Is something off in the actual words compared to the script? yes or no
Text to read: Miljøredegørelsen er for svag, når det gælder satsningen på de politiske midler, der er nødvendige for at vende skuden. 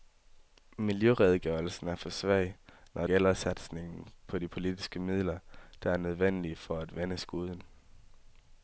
yes